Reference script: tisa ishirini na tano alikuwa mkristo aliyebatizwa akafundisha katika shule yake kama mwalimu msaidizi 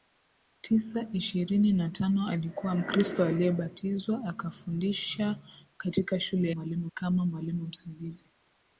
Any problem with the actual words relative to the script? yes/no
yes